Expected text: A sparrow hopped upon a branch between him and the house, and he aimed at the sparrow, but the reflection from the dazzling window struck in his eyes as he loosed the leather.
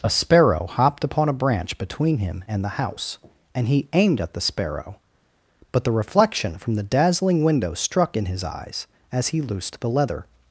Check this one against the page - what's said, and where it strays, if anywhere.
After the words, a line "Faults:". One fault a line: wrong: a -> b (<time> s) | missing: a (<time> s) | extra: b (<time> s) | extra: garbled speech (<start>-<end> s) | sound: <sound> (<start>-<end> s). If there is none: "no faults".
A sparrow hopped upon a branch between him and the house, and he aimed at the sparrow, but the reflection from the dazzling window struck in his eyes as he loosed the leather.
Faults:
no faults